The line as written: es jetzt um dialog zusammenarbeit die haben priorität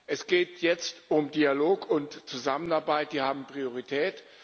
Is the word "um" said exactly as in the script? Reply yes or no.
yes